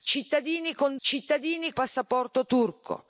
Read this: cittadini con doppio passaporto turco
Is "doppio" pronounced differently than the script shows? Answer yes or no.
yes